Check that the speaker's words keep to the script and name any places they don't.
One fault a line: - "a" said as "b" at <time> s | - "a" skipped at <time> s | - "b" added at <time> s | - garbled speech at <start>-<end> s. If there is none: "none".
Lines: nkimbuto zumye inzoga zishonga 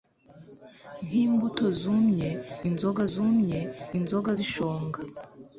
- "zumye inzoga" added at 3.1 s